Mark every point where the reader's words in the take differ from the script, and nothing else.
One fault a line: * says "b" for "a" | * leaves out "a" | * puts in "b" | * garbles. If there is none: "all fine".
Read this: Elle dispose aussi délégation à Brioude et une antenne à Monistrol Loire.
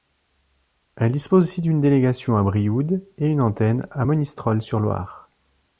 * puts in "d'une"
* puts in "sur"